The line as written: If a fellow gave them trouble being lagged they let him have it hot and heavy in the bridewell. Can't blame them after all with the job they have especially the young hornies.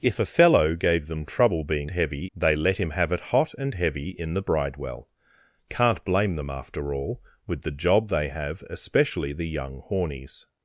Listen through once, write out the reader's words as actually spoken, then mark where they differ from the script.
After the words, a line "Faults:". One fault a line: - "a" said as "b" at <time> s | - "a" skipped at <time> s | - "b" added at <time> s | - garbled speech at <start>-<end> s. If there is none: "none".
If a fellow gave them trouble being heavy they let him have it hot and heavy in the bridewell. Can't blame them after all with the job they have especially the young hornies.
Faults:
- "lagged" said as "heavy" at 1.9 s